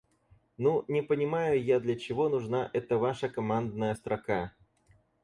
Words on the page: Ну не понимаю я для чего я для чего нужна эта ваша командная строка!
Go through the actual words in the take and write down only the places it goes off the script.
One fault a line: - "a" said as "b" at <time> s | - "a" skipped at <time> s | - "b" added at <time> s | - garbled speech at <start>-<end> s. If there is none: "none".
- "я для чего" skipped at 2.3 s